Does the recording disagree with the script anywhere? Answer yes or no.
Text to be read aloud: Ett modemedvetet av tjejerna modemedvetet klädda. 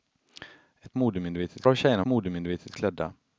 no